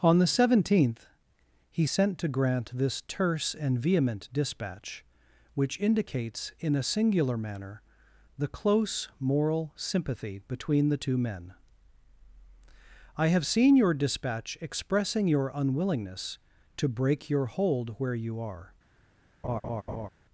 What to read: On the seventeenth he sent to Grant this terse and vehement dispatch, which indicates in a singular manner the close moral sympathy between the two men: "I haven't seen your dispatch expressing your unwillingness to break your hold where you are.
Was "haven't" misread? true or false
true